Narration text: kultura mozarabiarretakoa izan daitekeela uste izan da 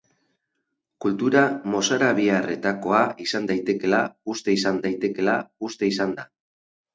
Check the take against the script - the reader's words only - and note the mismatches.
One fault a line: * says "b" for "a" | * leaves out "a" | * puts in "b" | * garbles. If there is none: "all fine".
* puts in "daitekeela uste izan"